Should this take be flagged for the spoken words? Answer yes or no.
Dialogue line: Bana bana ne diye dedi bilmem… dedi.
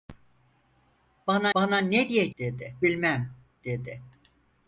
no